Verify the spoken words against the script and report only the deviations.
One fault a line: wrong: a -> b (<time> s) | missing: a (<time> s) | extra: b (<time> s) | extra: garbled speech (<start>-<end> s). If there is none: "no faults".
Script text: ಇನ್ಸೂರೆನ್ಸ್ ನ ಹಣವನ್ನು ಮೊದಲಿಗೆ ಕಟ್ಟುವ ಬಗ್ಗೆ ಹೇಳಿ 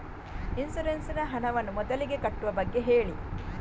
no faults